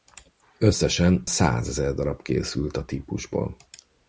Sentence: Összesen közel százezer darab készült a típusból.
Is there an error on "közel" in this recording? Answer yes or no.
yes